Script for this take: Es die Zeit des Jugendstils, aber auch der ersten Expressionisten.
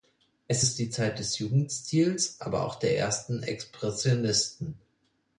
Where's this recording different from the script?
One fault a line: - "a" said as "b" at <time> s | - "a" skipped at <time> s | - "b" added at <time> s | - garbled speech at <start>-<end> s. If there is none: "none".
- "ist" added at 0.6 s